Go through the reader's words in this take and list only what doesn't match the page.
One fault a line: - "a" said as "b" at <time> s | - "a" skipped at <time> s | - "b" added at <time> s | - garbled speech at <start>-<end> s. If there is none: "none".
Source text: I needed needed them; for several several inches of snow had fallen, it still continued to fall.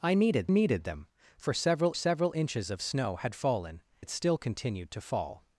none